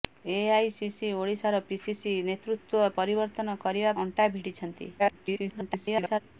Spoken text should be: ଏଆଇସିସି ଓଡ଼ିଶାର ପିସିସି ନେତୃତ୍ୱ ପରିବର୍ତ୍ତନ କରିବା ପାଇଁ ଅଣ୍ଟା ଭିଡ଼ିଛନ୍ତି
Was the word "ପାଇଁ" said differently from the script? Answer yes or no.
yes